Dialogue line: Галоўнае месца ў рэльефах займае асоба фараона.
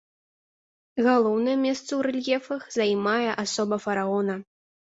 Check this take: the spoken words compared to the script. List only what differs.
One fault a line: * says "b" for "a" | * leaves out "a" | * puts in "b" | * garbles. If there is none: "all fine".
all fine